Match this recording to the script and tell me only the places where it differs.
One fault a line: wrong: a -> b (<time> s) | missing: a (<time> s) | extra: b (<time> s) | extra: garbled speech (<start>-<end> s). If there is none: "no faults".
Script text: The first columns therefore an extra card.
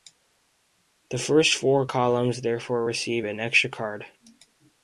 extra: four (1.5 s)
extra: receive (2.8 s)